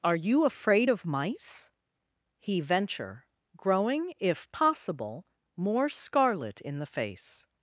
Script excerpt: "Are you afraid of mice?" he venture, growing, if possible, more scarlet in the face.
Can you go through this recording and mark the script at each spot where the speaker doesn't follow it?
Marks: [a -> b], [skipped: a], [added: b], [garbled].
"Are you afraid of mice?" he venture, growing, if possible, more scarlet in the face.